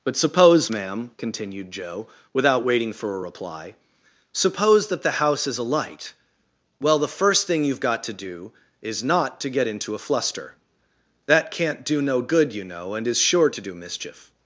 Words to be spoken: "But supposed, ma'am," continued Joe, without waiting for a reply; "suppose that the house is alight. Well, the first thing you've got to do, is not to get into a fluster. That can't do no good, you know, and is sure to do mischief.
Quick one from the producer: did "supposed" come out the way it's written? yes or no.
no